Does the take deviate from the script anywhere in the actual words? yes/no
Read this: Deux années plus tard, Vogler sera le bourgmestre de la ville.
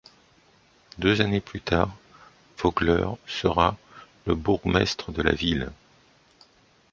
no